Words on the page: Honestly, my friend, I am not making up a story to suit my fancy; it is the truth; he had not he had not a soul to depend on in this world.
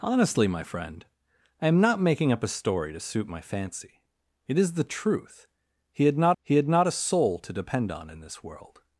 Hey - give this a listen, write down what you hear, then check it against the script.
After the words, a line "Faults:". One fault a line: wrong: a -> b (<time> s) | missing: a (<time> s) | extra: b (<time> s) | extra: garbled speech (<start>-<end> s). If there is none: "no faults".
Honestly, my friend, I am not making up a story to suit my fancy; it is the truth; he had not he had not a soul to depend on in this world.
Faults:
no faults